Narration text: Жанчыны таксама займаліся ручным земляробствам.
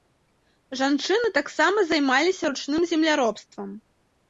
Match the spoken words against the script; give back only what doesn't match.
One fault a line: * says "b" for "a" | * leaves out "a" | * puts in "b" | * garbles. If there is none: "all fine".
all fine